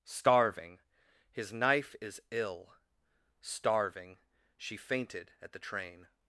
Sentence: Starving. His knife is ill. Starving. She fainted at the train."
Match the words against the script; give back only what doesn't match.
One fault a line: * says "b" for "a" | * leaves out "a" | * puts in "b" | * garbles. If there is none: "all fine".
all fine